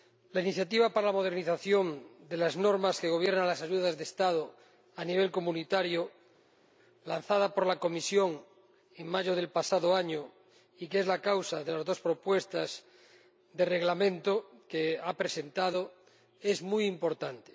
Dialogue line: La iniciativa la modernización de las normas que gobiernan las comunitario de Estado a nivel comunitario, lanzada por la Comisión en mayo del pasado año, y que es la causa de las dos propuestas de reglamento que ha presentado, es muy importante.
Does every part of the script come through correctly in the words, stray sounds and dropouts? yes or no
no